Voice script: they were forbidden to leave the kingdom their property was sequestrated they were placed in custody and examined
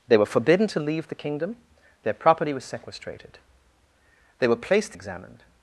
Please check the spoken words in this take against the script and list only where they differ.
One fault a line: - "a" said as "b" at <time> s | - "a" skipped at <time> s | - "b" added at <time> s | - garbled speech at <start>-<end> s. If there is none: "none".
- "in custody and" skipped at 5.0 s